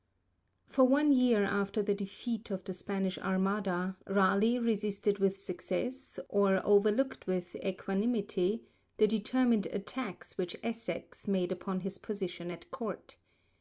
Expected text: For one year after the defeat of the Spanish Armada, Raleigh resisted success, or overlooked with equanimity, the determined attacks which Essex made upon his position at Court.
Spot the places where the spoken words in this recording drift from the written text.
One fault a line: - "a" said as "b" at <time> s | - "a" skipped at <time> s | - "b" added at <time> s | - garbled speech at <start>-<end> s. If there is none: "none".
- "with" added at 5.2 s